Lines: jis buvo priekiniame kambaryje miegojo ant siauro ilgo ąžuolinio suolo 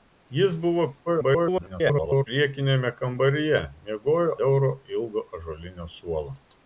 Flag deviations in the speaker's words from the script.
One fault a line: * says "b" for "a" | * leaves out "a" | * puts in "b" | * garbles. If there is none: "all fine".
* garbles
* leaves out "ant"